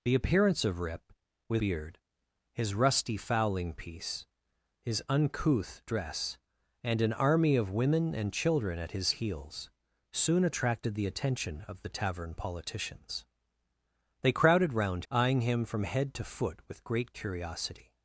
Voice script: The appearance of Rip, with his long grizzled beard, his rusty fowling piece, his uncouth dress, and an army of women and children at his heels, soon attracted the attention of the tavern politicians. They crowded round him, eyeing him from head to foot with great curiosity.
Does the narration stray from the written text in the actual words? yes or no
yes